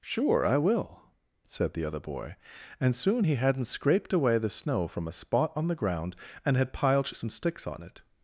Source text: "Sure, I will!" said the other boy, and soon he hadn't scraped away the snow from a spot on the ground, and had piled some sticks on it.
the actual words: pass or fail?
pass